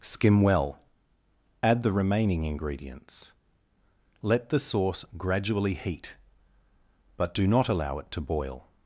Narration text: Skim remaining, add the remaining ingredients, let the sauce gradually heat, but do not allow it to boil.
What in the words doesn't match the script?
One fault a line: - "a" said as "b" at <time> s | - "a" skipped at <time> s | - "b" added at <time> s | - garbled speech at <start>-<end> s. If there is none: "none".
- "remaining" said as "well" at 0.4 s